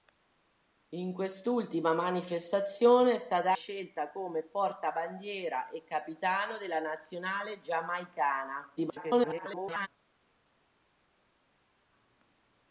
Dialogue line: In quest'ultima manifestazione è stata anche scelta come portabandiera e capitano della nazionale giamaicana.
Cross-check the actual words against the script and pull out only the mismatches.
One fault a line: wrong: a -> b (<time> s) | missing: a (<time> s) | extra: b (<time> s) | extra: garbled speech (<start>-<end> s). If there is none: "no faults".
missing: anche (3.5 s)
extra: garbled speech (8.8-9.9 s)